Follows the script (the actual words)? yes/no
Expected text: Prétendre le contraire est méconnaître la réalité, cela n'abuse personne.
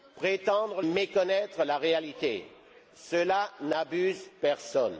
no